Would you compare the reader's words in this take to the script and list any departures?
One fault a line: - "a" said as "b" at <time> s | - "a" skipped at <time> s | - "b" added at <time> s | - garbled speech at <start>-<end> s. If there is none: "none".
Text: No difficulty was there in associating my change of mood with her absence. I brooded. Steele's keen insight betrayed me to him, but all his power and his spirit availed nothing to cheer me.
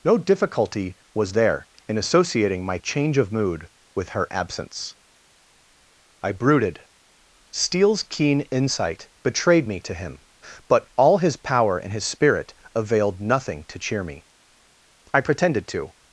- "I pretended to" added at 15.1 s